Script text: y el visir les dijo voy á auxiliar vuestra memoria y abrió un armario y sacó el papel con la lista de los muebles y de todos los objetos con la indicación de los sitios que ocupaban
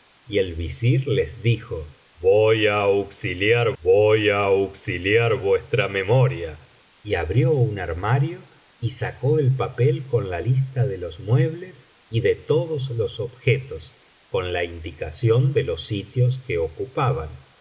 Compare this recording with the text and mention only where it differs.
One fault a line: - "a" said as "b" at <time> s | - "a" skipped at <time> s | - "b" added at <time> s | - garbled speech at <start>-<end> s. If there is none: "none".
- "voy á auxiliar" added at 3.8 s